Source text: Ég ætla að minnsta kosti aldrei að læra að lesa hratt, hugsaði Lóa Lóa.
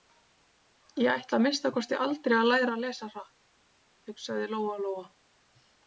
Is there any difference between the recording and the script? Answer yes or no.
no